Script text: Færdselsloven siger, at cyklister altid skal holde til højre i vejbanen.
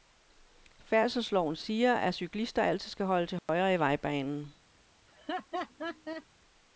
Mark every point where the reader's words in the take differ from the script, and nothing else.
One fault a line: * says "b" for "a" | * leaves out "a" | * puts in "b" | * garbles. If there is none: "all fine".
all fine